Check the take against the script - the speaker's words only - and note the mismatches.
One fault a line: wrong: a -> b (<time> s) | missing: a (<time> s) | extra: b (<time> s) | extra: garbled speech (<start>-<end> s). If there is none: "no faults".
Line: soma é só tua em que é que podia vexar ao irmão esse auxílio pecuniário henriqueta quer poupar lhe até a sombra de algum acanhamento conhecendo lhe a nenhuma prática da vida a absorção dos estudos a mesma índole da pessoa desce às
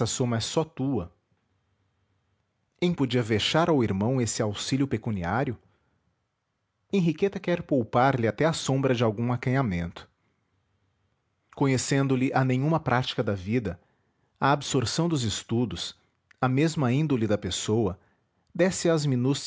missing: que é que (2.9 s)